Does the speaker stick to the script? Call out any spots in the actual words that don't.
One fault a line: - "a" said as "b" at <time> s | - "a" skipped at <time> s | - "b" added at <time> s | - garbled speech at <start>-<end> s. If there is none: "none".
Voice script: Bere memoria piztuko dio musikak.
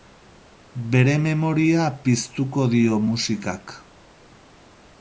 none